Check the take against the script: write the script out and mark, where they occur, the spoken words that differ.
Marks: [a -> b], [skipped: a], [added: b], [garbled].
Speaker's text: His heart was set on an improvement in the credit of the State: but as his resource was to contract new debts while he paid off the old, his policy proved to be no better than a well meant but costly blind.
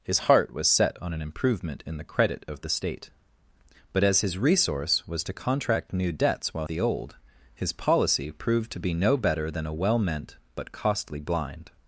His heart was set on an improvement in the credit of the State: but as his resource was to contract new debts while [skipped: he paid off] the old, his policy proved to be no better than a well meant but costly blind.